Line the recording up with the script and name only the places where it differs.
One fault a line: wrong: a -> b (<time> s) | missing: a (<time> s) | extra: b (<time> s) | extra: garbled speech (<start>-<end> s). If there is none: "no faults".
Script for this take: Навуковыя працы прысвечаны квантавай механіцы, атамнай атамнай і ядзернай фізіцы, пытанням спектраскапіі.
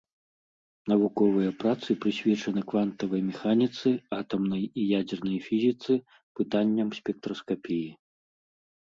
missing: атамнай (4.6 s)